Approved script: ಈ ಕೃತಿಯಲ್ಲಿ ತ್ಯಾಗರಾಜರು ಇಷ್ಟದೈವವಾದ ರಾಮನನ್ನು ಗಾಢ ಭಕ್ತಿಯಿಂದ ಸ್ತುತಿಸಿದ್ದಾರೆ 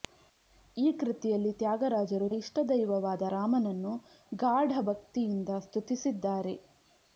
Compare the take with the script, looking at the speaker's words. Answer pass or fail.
pass